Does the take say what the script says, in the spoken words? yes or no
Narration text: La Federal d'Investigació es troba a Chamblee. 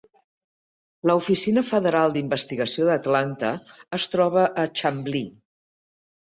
no